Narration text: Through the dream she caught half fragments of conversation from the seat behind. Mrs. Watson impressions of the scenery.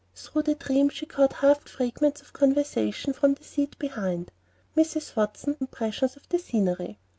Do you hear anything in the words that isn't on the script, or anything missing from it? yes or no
no